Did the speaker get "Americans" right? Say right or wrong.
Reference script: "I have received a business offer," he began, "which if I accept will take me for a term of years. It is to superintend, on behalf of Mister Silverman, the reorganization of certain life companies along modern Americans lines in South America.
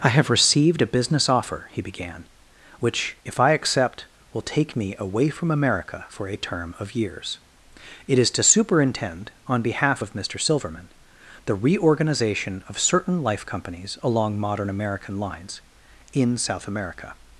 wrong